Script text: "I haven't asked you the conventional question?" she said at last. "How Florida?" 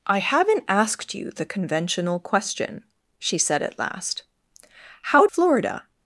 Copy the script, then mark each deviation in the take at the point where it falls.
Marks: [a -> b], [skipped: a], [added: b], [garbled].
"I haven't asked you the conventional question?" she said at last. "How Florida?"